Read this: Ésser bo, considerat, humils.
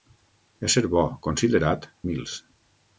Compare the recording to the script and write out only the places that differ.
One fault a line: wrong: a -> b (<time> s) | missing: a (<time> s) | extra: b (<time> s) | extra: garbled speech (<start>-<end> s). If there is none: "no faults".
no faults